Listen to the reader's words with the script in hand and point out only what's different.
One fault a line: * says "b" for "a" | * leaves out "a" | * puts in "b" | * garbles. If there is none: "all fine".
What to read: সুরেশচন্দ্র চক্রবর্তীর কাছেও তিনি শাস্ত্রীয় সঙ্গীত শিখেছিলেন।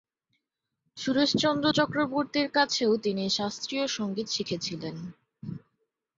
all fine